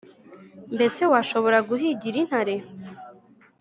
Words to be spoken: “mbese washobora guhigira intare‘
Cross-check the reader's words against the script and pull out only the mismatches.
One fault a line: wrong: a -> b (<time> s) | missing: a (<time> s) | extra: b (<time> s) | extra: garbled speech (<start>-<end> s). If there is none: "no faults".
no faults